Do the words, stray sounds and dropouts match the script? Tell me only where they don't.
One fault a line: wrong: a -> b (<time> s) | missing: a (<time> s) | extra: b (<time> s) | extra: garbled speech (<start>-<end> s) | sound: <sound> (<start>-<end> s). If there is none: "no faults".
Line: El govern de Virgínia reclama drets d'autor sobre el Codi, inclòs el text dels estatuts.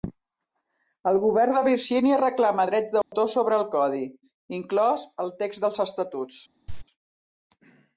sound: dropout (3.0-3.1 s)
sound: cough (6.7-6.8 s)